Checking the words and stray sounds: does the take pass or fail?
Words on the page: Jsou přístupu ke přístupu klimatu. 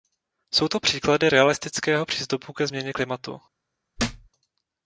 fail